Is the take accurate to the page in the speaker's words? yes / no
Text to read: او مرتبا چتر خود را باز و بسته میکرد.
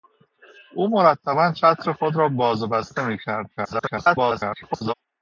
no